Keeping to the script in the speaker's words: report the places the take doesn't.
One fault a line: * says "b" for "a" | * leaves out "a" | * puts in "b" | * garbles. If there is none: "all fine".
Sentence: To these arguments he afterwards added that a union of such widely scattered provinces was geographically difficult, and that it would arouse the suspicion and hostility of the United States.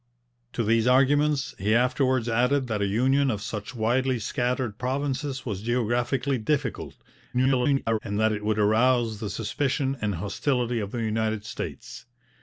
* garbles